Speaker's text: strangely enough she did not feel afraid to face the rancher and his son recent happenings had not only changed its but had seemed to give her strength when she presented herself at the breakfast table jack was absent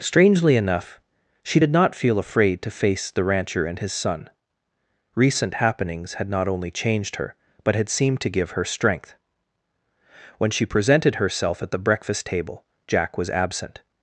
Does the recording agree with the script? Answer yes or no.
no